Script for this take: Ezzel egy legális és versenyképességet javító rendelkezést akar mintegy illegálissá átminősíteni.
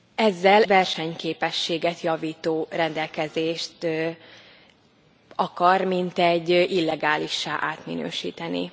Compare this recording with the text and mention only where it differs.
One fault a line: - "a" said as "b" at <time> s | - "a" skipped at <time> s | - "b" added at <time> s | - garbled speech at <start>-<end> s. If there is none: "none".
- "egy legális és" skipped at 0.6 s